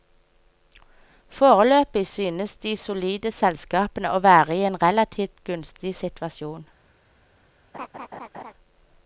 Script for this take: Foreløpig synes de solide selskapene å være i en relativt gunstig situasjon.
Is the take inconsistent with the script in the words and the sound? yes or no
yes